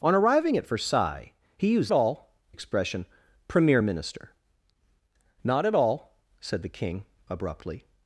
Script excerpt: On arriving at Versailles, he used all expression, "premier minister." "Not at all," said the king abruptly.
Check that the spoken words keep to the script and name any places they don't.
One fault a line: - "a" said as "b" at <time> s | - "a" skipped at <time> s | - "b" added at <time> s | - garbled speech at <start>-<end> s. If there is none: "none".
none